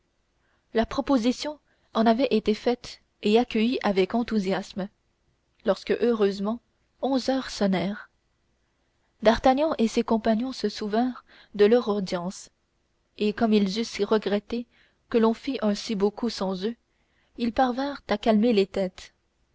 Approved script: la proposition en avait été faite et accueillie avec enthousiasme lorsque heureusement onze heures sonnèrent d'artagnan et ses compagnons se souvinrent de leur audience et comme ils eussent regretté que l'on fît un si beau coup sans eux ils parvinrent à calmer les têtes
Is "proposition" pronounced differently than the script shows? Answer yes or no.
no